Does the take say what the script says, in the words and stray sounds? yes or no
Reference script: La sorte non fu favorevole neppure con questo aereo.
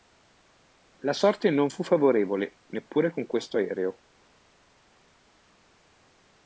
yes